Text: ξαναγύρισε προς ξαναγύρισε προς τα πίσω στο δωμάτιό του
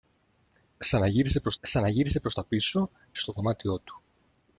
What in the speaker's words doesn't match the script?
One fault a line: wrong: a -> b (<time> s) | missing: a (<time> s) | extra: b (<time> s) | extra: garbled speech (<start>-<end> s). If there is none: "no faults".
no faults